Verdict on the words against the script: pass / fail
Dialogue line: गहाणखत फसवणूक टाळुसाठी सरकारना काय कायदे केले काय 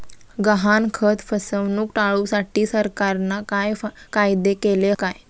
pass